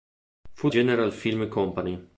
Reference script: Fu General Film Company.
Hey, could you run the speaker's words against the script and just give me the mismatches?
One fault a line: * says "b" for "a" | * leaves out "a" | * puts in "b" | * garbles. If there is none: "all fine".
all fine